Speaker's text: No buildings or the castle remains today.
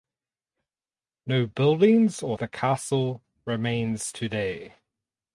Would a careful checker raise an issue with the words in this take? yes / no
no